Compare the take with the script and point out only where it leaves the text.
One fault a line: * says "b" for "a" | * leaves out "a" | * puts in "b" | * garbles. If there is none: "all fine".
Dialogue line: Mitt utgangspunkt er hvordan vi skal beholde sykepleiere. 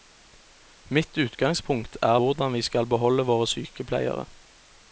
* puts in "våre"